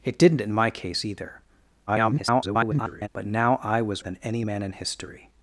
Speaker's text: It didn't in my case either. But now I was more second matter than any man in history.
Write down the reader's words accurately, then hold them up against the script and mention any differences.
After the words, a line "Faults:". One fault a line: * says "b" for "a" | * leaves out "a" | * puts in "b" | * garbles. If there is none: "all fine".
It didn't in my case either. [garbled] But now I was than any man in history.
Faults:
* garbles
* leaves out "more second matter"